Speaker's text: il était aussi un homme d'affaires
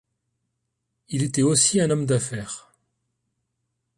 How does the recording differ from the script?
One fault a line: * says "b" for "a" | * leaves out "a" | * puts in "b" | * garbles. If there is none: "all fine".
all fine